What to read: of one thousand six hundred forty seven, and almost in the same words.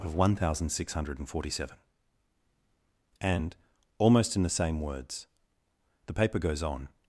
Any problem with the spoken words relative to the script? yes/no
yes